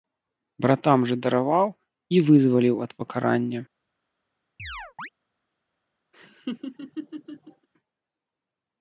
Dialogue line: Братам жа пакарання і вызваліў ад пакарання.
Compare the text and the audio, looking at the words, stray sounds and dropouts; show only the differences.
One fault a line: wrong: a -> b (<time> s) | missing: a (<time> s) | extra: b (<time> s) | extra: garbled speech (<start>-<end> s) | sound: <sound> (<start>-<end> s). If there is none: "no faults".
wrong: пакарання -> дараваў (1.2 s)
sound: chirp (4.6-5.1 s)
sound: laugh (6.1-7.7 s)